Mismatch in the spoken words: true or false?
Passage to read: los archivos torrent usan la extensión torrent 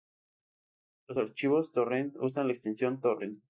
false